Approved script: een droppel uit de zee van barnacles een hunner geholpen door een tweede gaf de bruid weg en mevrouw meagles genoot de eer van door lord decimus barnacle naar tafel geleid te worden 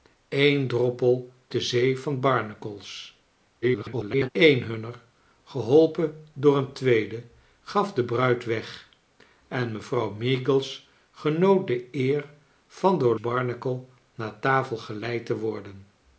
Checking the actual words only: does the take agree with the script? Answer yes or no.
no